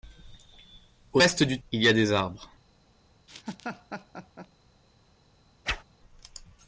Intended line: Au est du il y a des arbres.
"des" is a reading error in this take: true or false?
false